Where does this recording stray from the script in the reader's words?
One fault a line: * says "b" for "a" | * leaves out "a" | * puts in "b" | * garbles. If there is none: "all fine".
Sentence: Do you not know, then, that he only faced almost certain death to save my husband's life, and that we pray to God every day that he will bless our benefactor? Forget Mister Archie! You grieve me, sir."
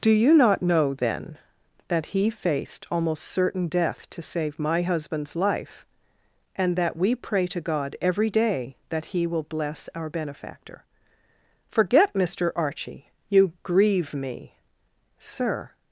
* leaves out "only"